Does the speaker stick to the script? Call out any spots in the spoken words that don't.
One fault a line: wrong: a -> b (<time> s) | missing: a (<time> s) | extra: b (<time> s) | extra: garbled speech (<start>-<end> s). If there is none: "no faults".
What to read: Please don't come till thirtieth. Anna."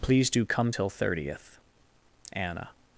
wrong: don't -> do (0.3 s)